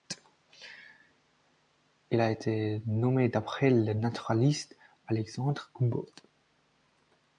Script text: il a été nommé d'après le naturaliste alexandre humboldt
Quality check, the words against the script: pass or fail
pass